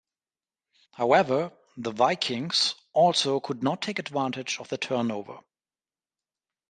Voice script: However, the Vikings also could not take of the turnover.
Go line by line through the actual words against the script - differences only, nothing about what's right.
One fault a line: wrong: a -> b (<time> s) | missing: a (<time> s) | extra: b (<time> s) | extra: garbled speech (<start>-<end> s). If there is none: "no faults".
extra: advantage (4.0 s)